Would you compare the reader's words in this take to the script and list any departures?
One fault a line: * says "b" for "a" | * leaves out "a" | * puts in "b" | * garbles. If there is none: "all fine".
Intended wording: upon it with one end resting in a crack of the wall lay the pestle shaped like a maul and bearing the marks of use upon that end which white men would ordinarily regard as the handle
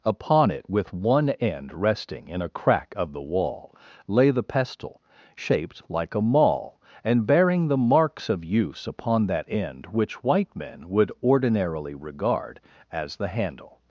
all fine